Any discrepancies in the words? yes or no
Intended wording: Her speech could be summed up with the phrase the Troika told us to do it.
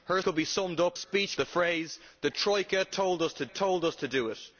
yes